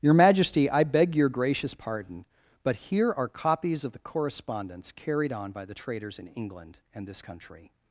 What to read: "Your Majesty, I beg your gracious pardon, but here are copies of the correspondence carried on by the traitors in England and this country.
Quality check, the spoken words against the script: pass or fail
pass